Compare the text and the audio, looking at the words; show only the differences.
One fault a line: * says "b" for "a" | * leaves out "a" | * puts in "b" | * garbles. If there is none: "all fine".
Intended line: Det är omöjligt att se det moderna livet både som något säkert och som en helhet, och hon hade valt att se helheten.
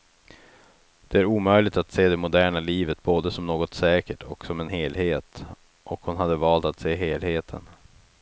all fine